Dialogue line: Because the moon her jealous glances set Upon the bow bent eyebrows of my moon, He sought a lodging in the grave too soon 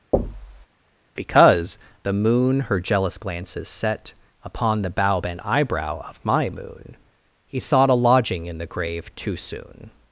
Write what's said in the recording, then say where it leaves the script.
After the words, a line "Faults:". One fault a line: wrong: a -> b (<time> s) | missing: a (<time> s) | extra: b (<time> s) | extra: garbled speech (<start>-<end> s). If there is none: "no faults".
Because the moon her jealous glances set Upon the bow bent eyebrow of my moon, He sought a lodging in the grave too soon
Faults:
wrong: eyebrows -> eyebrow (5.4 s)